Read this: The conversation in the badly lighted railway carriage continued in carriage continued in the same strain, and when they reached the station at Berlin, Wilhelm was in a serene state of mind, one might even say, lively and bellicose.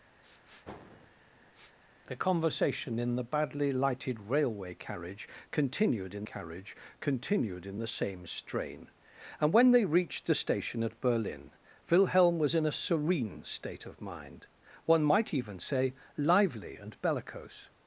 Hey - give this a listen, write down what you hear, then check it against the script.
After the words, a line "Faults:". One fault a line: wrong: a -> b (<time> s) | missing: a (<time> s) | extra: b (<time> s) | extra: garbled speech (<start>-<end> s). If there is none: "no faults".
The conversation in the badly lighted railway carriage continued in carriage continued in the same strain, and when they reached the station at Berlin, Wilhelm was in a serene state of mind, one might even say, lively and bellicose.
Faults:
no faults